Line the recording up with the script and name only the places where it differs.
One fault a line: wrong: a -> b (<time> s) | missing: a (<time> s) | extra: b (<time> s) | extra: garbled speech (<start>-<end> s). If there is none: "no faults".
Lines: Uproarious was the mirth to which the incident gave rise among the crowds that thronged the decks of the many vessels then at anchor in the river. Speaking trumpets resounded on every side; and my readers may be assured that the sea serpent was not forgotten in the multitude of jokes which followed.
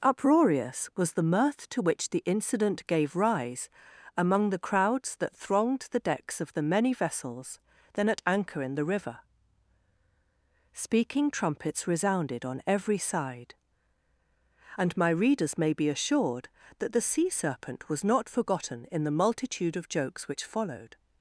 no faults